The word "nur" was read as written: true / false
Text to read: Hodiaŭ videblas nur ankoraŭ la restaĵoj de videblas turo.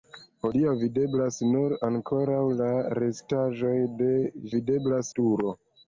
true